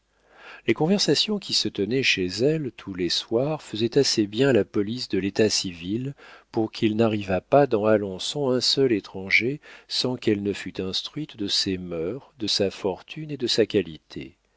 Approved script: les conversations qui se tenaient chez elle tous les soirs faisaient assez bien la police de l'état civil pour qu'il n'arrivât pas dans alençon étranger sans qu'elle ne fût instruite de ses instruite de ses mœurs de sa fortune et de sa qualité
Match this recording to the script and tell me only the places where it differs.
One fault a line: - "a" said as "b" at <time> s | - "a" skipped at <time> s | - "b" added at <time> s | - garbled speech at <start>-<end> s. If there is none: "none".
- "un seul" added at 8.5 s
- "instruite de ses" skipped at 11.8 s